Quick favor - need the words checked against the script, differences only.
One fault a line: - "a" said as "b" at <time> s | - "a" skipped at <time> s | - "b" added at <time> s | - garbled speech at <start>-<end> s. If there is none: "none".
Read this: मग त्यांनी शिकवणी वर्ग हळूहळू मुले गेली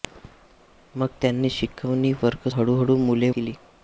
none